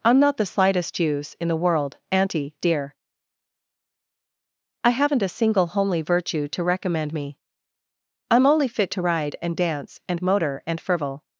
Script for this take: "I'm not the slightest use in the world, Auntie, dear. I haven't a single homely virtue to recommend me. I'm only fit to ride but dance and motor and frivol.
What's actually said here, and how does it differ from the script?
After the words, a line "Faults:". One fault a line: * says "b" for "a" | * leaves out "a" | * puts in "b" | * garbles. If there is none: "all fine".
"I'm not the slightest use in the world, Auntie, dear. I haven't a single homely virtue to recommend me. I'm only fit to ride and dance and motor and frivol.
Faults:
* says "and" for "but"